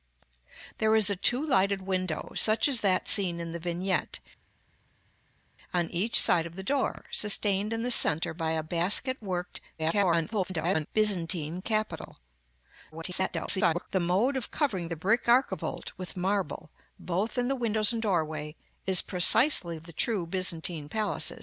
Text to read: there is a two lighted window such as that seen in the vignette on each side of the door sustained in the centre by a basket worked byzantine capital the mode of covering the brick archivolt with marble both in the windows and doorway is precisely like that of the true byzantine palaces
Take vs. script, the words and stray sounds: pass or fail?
fail